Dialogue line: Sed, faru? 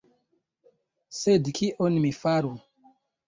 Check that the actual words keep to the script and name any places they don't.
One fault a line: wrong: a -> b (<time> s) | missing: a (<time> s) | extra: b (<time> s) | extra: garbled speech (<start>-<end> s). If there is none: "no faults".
extra: kion mi (1.6 s)